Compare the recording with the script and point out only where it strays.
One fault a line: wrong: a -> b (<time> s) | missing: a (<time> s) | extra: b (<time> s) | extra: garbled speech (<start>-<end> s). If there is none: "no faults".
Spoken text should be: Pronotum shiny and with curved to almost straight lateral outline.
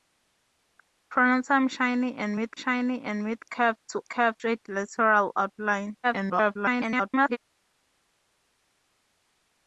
extra: shiny and with (2.6 s)
wrong: almost -> curved (4.1 s)
extra: garbled speech (6.0-7.4 s)